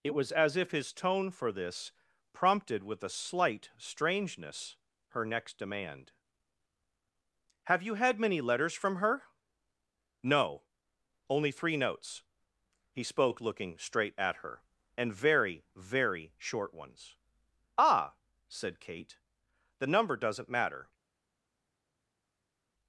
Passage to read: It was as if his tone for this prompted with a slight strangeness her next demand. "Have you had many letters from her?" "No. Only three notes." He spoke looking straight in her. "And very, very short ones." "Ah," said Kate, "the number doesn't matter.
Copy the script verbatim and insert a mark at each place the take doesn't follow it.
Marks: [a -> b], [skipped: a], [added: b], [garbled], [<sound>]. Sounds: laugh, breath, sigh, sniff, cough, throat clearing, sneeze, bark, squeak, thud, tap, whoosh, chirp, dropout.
It was as if his tone for this prompted with a slight strangeness her next demand. "Have you had many letters from her?" "No. Only three notes." He spoke looking straight [in -> at] her. "And very, very short ones." "Ah," said Kate, "the number doesn't matter.